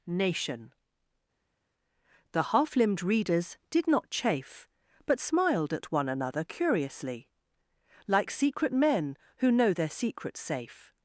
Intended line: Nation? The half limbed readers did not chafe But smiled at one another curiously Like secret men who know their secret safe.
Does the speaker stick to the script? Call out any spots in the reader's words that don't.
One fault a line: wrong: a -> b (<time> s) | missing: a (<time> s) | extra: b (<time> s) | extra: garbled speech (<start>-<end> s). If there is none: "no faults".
no faults